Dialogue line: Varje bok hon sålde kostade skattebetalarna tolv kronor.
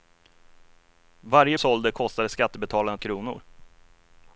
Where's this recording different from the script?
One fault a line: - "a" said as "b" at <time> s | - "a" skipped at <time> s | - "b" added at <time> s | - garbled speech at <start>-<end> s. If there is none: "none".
- "bok hon" skipped at 1.6 s
- "tolv" skipped at 3.0 s